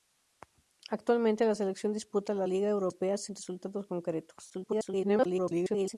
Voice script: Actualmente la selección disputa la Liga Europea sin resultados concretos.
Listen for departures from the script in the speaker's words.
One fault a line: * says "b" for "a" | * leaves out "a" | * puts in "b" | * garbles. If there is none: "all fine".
* garbles